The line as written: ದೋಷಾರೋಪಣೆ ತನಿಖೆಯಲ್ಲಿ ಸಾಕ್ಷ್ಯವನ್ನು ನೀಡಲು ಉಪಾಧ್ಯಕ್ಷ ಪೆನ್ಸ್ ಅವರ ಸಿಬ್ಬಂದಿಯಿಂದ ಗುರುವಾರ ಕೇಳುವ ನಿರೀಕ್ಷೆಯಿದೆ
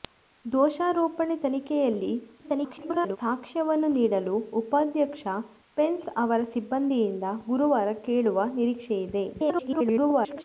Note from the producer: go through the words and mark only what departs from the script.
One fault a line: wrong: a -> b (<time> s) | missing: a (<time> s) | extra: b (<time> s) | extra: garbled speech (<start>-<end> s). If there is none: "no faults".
extra: garbled speech (2.4-3.2 s)
extra: garbled speech (9.3-10.4 s)